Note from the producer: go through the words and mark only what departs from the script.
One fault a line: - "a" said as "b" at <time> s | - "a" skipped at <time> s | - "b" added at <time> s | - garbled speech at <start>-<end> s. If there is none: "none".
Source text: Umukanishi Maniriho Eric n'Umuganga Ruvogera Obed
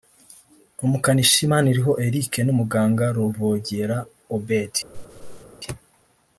none